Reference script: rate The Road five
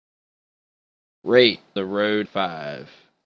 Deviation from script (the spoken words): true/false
false